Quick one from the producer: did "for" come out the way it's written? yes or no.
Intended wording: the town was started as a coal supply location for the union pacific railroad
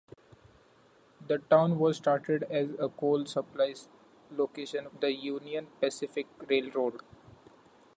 no